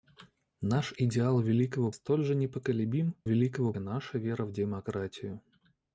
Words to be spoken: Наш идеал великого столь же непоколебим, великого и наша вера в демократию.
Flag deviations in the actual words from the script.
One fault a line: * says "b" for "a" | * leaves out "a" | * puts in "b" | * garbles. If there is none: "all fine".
all fine